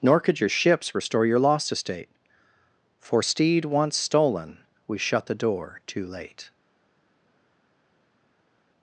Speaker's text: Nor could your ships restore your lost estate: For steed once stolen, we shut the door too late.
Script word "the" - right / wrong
right